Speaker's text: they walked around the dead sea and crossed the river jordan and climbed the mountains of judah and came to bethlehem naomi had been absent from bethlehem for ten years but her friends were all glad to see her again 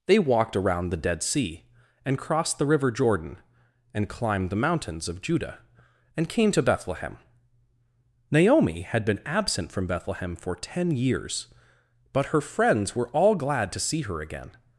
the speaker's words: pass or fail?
pass